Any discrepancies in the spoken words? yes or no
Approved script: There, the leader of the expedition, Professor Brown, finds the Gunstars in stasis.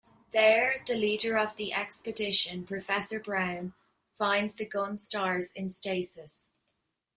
no